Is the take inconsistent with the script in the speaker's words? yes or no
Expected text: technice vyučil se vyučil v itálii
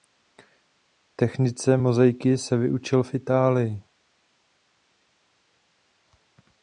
yes